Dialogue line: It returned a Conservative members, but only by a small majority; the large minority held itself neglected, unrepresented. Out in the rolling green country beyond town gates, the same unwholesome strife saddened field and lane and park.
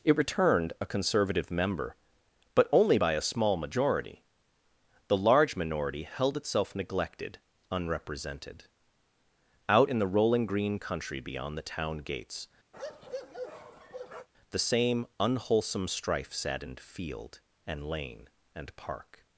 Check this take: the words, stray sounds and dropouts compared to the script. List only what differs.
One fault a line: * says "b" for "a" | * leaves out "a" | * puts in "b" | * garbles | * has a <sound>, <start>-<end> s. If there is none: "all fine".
* says "member" for "members"
* puts in "the"
* has a bark, 12.7-14.3 s